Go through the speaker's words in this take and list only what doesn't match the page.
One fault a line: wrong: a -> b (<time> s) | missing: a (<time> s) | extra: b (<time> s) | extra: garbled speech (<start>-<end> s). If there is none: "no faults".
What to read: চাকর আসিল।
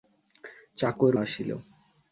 no faults